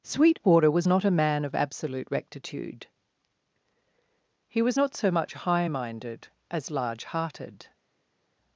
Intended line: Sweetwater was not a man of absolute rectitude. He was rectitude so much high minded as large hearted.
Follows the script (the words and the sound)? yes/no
no